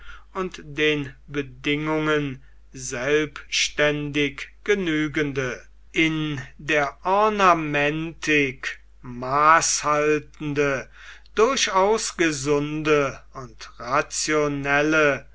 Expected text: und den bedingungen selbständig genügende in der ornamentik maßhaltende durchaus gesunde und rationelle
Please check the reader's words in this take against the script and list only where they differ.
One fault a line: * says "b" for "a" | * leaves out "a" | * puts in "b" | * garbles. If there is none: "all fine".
all fine